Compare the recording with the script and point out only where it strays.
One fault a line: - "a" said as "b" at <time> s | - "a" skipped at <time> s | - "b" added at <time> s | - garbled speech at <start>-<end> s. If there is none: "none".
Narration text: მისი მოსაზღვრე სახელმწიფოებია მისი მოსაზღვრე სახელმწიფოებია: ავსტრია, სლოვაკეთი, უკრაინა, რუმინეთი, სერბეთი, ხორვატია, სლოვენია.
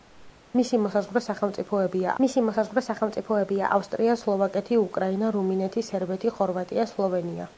none